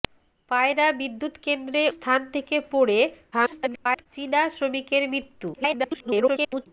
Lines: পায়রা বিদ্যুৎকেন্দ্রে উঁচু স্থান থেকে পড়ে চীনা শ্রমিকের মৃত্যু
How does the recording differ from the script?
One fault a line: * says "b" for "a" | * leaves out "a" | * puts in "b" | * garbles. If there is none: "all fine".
* leaves out "উঁচু"
* garbles
* garbles